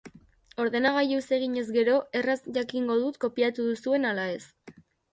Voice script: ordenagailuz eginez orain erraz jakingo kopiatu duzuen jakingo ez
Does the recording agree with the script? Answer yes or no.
no